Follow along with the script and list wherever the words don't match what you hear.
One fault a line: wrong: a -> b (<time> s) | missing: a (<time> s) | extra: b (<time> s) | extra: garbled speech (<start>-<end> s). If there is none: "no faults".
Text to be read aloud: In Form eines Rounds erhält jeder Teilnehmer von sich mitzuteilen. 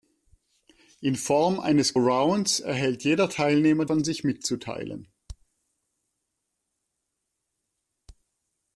no faults